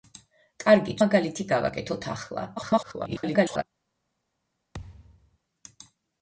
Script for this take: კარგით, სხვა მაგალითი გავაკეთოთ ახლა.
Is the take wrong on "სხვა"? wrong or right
wrong